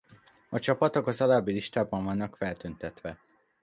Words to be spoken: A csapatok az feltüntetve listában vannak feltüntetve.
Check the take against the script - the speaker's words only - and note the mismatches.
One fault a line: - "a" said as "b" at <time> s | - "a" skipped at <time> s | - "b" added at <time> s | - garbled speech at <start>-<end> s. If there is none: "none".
- "feltüntetve" said as "alábbi" at 1.2 s